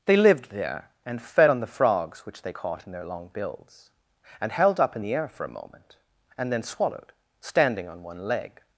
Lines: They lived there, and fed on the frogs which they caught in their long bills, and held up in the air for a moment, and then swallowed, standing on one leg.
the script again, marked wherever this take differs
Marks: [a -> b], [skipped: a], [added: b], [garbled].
They lived there, and fed on the frogs which they caught in their long bills, and held up in the air for a moment, and then swallowed, standing on one leg.